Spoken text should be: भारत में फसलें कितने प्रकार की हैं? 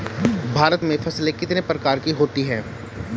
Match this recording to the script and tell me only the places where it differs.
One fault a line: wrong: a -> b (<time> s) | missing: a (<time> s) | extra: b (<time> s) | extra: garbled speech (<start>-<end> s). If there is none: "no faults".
extra: होती (2.1 s)